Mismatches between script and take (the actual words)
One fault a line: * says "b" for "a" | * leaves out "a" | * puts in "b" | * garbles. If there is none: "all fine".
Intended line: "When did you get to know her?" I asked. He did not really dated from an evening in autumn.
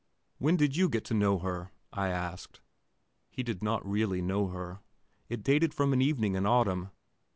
* puts in "know her It"